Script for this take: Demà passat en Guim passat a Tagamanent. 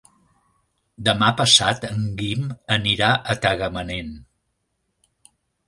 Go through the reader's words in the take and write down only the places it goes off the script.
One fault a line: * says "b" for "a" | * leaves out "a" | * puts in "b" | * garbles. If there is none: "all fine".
* says "anirà" for "passat"